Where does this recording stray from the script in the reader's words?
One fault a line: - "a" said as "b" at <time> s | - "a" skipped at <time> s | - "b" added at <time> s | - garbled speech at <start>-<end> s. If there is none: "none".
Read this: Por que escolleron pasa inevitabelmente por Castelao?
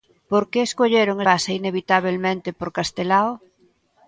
none